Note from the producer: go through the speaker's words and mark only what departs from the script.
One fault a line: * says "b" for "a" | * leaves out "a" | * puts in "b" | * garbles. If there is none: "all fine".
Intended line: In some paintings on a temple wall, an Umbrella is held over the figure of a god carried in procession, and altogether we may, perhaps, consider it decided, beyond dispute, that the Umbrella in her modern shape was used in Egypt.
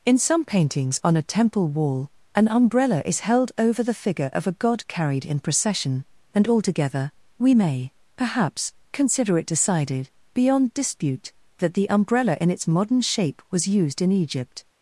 * says "its" for "her"